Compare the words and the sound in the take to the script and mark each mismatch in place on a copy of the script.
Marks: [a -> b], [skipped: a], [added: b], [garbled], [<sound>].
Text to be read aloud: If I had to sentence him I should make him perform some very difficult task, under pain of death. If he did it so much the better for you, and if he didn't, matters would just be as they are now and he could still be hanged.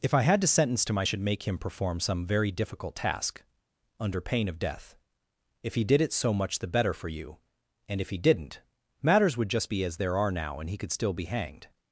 If I had to sentence him I should make him perform some very difficult task, under pain of death. If he did it so much the better for you, and if he didn't, matters would just be as [they -> there] are now and he could still be hanged.